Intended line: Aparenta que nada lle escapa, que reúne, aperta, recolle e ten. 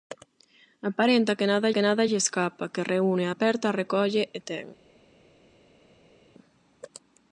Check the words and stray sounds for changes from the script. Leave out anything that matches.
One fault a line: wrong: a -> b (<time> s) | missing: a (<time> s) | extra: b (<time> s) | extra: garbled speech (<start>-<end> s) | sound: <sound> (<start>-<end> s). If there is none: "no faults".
extra: que nada (1.7 s)